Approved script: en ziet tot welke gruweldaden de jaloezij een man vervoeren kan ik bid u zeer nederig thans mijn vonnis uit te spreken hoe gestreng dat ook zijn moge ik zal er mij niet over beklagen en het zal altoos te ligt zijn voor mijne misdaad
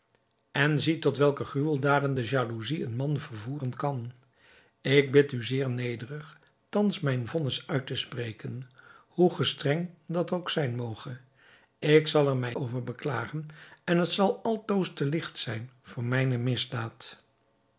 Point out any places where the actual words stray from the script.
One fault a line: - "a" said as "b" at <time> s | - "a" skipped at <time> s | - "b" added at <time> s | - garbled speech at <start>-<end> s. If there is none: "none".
- "niet" skipped at 12.6 s